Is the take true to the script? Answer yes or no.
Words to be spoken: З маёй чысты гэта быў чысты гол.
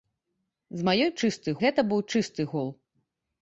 yes